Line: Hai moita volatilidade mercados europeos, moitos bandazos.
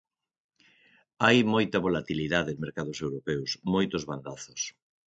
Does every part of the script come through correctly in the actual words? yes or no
yes